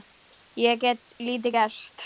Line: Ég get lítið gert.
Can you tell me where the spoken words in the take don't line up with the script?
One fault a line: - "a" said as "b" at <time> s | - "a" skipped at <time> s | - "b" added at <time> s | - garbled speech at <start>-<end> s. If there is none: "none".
none